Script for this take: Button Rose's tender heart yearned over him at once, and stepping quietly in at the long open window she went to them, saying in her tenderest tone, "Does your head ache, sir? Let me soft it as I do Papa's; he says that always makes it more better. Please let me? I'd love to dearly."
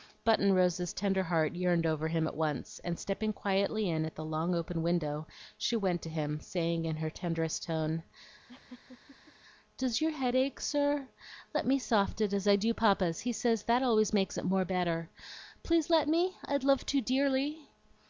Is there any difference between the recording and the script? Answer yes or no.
yes